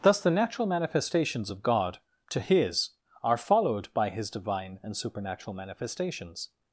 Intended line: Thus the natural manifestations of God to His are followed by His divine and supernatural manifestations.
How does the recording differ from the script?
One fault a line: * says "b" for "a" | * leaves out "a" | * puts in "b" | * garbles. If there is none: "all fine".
all fine